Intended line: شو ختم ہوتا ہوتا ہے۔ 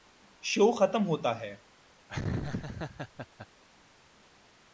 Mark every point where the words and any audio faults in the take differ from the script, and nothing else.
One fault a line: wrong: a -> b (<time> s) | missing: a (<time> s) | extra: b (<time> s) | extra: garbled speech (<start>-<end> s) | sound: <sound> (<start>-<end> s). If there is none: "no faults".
missing: ہوتا (1.4 s)
sound: laugh (2.1-3.5 s)